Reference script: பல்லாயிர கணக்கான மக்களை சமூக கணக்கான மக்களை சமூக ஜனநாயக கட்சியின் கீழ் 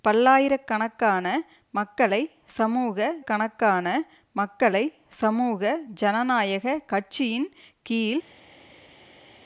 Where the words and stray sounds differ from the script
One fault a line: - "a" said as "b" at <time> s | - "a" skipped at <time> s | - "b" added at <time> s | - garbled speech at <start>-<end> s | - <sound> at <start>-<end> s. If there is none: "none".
none